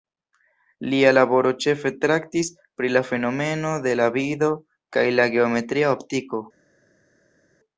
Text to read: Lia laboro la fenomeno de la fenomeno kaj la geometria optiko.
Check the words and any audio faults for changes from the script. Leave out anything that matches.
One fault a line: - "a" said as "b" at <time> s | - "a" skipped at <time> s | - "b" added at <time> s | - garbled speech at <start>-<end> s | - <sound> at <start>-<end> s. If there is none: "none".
- "ĉefe traktis pri" added at 1.6 s
- "fenomeno" said as "vido" at 4.2 s